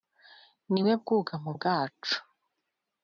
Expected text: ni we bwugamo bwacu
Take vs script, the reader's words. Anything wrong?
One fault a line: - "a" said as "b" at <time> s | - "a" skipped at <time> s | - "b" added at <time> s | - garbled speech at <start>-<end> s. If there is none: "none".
none